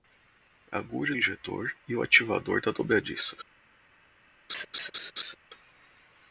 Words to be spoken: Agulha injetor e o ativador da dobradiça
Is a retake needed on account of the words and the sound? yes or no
yes